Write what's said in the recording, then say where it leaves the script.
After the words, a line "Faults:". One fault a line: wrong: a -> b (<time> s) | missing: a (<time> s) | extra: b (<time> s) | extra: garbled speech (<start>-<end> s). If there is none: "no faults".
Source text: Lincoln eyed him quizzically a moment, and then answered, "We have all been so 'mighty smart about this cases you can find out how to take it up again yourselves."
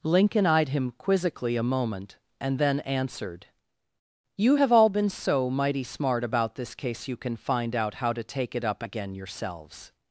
Lincoln eyed him quizzically a moment, and then answered, "You have all been so 'mighty smart about this case you can find out how to take it up again yourselves."
Faults:
wrong: We -> You (4.3 s)
wrong: cases -> case (6.7 s)